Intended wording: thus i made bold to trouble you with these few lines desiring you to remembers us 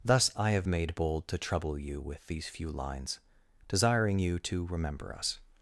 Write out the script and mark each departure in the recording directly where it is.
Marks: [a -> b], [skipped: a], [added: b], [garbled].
thus i [added: have] made bold to trouble you with these few lines desiring you to [remembers -> remember] us